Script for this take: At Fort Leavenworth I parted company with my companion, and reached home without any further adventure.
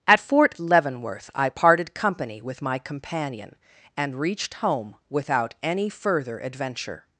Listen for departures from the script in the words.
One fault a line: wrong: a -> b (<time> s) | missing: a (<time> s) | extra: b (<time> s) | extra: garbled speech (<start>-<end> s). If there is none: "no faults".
no faults